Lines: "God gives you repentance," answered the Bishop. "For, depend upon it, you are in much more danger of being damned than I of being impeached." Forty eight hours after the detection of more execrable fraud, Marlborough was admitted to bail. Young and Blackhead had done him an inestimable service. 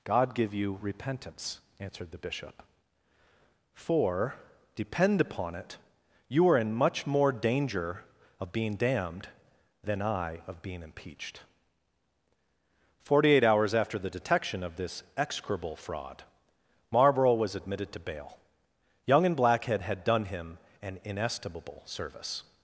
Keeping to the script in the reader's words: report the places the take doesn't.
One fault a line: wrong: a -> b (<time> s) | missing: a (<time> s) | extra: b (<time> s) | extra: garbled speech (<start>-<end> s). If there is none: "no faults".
wrong: gives -> give (0.3 s)
wrong: more -> this (14.8 s)